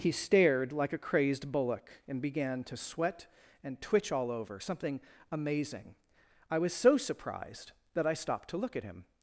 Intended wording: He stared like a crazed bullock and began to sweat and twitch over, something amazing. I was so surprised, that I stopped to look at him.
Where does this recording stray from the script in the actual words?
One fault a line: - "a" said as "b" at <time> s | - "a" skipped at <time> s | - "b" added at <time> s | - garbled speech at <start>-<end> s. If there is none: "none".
- "all" added at 4.1 s